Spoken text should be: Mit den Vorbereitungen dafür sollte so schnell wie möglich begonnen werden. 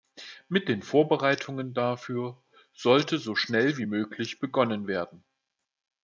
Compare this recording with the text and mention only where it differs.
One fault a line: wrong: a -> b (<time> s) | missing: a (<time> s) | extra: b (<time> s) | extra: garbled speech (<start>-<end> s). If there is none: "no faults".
no faults